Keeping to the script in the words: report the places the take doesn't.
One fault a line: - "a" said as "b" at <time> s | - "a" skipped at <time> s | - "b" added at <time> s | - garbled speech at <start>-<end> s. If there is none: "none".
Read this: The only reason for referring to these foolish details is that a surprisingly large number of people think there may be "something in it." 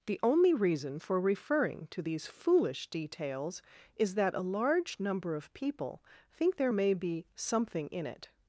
- "surprisingly" skipped at 4.4 s